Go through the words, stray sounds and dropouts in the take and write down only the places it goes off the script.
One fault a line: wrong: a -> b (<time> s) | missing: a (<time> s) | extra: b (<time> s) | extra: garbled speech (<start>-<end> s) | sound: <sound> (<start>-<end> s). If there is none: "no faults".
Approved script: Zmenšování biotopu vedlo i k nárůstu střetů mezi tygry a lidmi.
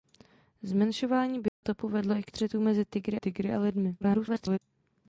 sound: dropout (1.5-1.6 s)
missing: nárůstu (2.3 s)
extra: tygry (3.2 s)
extra: garbled speech (4.0-4.6 s)